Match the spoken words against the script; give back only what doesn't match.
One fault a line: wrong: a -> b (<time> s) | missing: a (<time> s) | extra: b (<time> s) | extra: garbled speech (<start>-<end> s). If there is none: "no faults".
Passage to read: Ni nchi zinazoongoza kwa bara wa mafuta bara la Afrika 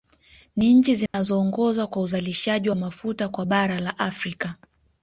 wrong: bara -> uzalishaji (2.0 s)
extra: kwa (3.3 s)